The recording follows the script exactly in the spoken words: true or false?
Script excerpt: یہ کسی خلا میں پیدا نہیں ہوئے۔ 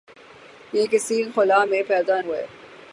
false